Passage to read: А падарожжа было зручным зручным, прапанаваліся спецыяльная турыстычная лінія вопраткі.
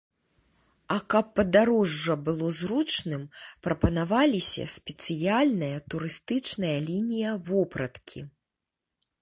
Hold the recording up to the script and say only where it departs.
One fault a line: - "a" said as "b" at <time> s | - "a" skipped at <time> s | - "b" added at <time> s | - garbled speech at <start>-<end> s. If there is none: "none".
- "каб" added at 1.1 s
- "зручным" skipped at 3.2 s